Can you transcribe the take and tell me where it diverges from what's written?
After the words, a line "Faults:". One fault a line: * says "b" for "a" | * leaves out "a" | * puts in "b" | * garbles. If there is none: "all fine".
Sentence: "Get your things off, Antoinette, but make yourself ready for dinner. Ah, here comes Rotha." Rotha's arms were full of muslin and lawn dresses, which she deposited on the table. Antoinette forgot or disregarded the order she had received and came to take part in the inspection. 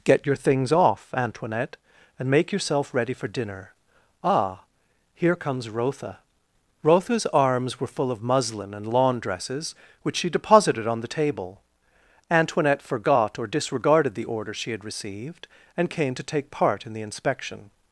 "Get your things off, Antoinette, and make yourself ready for dinner. Ah, here comes Rotha." Rotha's arms were full of muslin and lawn dresses, which she deposited on the table. Antoinette forgot or disregarded the order she had received and came to take part in the inspection.
Faults:
* says "and" for "but"